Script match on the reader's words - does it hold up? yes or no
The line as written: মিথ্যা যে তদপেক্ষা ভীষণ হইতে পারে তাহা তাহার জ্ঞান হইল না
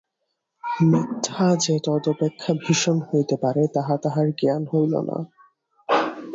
yes